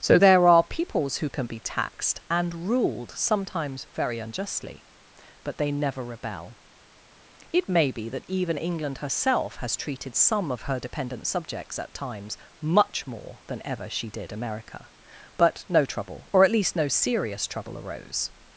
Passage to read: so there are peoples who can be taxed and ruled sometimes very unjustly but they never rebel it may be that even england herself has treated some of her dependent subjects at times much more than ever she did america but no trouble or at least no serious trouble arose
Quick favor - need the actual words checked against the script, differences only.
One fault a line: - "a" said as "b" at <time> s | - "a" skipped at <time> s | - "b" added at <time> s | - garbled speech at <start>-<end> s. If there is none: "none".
none